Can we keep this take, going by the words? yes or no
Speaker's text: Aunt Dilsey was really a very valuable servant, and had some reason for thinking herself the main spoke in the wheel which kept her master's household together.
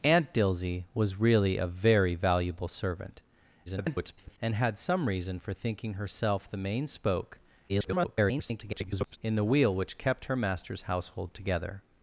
no